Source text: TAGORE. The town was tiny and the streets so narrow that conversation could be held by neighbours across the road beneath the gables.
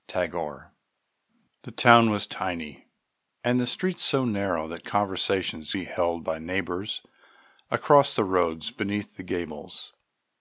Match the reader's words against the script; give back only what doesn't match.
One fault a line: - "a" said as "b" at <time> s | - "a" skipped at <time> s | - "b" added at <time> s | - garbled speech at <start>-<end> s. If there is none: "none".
- "could" skipped at 5.6 s